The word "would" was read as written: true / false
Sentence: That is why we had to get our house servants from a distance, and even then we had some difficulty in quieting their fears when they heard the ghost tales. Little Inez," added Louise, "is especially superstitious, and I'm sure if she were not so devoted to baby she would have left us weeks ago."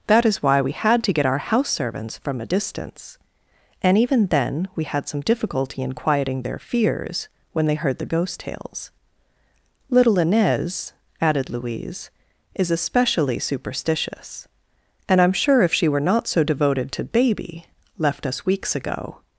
false